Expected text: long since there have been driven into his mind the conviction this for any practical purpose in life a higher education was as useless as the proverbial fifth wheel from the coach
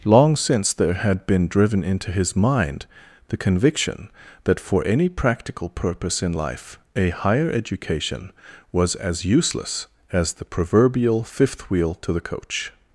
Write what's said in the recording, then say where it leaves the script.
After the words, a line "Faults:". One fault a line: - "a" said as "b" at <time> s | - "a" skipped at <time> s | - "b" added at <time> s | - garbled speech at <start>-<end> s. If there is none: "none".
long since there had been driven into his mind the conviction that for any practical purpose in life a higher education was as useless as the proverbial fifth wheel to the coach
Faults:
- "have" said as "had" at 0.9 s
- "this" said as "that" at 4.4 s
- "from" said as "to" at 12.0 s